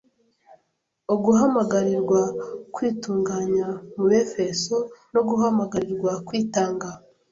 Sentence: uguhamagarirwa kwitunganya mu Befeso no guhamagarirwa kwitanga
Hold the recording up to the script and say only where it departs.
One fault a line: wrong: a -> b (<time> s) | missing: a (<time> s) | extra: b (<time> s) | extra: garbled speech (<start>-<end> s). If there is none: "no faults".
no faults